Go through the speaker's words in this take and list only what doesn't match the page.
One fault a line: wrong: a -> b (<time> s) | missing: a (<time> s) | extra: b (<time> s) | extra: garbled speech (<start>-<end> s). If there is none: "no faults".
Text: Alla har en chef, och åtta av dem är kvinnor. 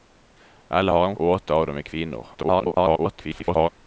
missing: chef (1.2 s)
extra: garbled speech (2.3-3.7 s)